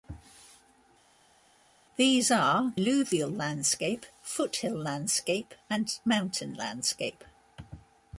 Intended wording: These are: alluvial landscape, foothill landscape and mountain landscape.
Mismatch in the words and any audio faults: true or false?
false